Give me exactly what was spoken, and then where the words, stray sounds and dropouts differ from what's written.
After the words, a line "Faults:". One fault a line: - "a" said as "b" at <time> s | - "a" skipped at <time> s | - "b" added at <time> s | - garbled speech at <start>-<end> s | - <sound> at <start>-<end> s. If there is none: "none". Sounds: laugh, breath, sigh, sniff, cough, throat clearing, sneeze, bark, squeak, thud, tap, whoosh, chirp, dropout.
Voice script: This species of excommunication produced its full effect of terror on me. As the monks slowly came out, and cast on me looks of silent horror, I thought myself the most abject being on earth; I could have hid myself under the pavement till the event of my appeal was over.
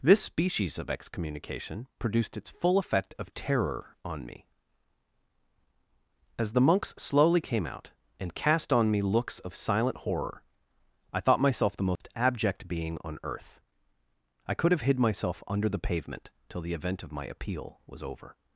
This species of excommunication produced its full effect of terror on me. As the monks slowly came out, and cast on me looks of silent horror, I thought myself the most abject being on earth; I could have hid myself under the pavement till the event of my appeal was over.
Faults:
- dropout at 12.0-12.0 s